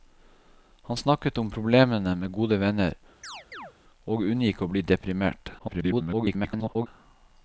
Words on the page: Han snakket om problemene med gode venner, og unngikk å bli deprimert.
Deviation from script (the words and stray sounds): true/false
true